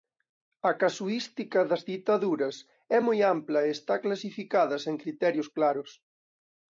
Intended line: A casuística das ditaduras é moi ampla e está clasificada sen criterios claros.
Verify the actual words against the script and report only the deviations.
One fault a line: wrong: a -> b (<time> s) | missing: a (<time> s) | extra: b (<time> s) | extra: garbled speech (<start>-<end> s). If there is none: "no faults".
no faults